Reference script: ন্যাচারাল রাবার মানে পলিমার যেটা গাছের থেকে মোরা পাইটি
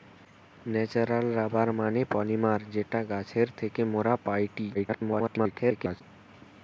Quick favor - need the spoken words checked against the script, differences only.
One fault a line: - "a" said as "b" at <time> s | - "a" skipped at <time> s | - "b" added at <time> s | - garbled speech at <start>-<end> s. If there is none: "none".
- garbled speech at 4.7-6.0 s